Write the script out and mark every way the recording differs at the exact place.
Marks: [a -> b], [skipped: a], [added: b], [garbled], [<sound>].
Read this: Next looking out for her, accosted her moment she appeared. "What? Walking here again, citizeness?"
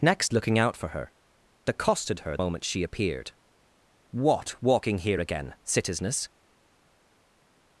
Next looking out for her, accosted her moment she appeared. "What? Walking here again, citizeness?"